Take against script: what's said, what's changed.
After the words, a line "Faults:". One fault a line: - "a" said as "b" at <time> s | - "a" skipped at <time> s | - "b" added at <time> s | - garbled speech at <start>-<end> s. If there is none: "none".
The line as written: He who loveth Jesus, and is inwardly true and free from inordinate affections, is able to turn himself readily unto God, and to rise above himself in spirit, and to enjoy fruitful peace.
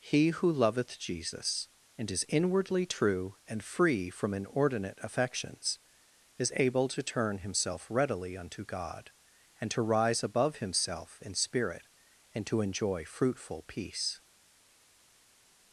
He who loveth Jesus, and is inwardly true and free from inordinate affections, is able to turn himself readily unto God, and to rise above himself in spirit, and to enjoy fruitful peace.
Faults:
none